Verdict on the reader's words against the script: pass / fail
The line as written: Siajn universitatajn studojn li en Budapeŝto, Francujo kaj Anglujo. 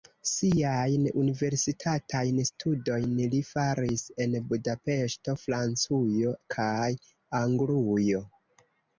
fail